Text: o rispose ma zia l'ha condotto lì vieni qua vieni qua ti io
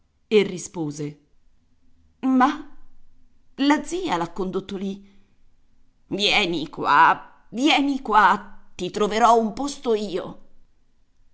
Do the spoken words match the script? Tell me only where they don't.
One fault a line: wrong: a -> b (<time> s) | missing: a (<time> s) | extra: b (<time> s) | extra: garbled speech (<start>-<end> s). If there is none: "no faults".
wrong: o -> e (0.3 s)
extra: la (3.5 s)
extra: troverò un posto (8.9 s)